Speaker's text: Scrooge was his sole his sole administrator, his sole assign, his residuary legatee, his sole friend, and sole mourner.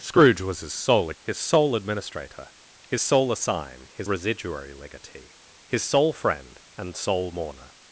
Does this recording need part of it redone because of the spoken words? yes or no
no